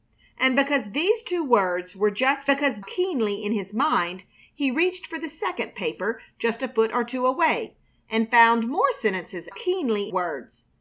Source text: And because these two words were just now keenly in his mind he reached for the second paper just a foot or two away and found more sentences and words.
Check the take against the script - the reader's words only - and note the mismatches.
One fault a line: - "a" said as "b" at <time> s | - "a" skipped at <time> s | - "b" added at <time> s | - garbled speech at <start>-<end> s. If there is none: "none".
- "now" said as "because" at 2.5 s
- "and" said as "keenly" at 9.5 s